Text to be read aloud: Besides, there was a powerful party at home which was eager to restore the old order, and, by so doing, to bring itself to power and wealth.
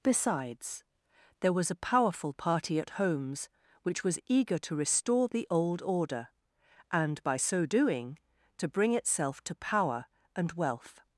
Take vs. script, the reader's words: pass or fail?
fail